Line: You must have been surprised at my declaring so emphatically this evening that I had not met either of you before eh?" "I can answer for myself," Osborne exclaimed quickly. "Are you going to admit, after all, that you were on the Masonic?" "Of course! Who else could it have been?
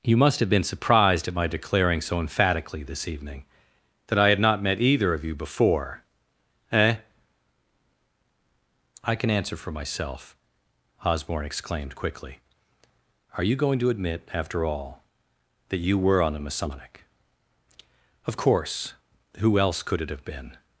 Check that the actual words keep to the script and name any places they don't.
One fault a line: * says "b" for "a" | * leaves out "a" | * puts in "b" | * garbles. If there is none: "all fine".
all fine